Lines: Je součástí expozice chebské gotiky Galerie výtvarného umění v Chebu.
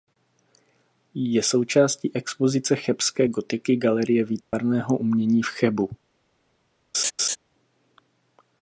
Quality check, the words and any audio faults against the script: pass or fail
fail